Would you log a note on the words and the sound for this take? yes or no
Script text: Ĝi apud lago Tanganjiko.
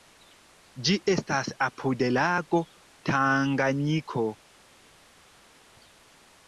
yes